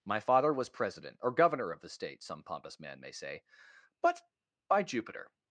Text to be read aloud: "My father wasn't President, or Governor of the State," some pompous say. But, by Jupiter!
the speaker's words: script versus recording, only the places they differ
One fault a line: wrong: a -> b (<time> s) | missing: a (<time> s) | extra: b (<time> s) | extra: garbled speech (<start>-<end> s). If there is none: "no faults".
wrong: wasn't -> was (0.5 s)
extra: man may (2.8 s)